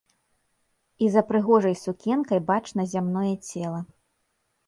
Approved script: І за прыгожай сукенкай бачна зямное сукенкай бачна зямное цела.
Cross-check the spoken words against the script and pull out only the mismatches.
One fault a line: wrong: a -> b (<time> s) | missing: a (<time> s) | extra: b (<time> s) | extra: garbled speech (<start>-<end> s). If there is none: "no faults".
missing: сукенкай бачна зямное (3.4 s)